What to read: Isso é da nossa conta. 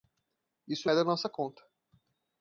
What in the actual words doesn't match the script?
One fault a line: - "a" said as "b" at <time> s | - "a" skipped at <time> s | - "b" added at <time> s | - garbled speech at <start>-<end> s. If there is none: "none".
none